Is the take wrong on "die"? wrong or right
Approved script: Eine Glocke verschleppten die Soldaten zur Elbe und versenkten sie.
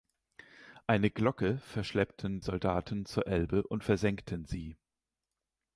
wrong